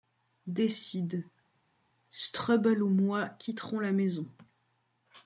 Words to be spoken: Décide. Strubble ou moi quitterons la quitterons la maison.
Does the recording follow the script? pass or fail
fail